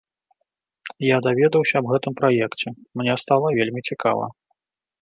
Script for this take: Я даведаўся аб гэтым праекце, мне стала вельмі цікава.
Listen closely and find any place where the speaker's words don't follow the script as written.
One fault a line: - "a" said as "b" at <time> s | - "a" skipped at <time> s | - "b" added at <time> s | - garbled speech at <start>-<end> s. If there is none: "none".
none